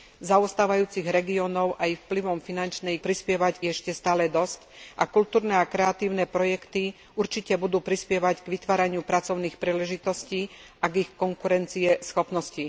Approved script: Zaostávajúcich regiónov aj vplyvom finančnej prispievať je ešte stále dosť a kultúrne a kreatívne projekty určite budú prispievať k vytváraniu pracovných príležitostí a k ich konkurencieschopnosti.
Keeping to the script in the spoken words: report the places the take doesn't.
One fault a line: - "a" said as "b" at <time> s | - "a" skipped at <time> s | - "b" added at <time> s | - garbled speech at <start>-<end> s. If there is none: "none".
none